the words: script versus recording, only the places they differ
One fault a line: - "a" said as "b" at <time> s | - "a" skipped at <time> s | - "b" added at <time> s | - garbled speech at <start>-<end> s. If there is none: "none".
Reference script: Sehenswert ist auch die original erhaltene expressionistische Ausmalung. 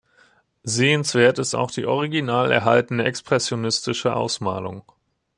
none